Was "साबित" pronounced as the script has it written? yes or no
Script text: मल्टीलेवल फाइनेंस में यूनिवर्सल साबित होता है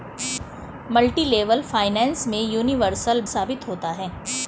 yes